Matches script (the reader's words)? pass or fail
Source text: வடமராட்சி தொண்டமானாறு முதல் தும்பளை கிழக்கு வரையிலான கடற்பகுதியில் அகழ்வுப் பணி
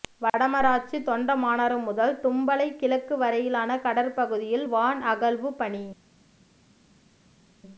fail